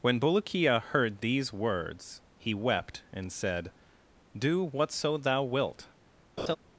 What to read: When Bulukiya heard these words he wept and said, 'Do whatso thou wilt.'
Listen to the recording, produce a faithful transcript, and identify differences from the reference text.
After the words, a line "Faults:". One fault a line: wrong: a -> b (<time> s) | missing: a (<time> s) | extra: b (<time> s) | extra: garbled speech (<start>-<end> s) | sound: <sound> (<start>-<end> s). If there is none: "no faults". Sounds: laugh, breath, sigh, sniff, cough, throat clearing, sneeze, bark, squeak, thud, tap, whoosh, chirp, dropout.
When Bulukiya heard these words he wept and said, 'Do whatso thou wilt.'
Faults:
sound: laugh (6.4-6.6 s)